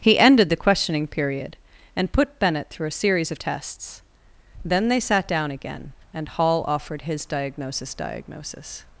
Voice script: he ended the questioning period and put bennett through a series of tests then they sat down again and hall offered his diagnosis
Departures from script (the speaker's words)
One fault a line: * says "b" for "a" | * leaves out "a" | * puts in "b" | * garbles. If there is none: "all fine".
* puts in "diagnosis"